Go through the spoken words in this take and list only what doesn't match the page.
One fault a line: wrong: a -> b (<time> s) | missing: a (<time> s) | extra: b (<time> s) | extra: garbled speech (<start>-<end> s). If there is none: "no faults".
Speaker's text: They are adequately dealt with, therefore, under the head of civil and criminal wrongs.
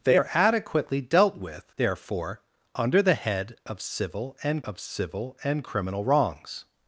extra: of civil and (4.6 s)